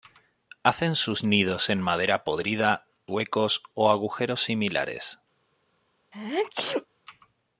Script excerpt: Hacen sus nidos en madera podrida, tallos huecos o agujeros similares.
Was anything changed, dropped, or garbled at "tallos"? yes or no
yes